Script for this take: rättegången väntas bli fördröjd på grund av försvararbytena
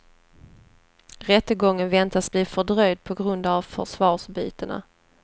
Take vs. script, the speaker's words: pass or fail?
pass